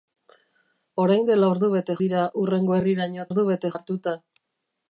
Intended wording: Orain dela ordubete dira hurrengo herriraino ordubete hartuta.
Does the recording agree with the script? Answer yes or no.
yes